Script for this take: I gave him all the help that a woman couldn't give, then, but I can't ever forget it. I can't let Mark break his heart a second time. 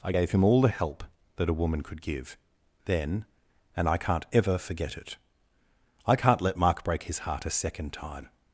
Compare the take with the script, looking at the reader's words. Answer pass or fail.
fail